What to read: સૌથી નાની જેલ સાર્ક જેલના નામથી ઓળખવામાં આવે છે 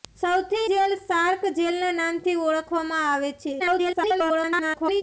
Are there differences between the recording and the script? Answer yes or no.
yes